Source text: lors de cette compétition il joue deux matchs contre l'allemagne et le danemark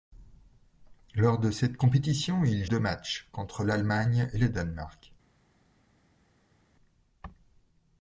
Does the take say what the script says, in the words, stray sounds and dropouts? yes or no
no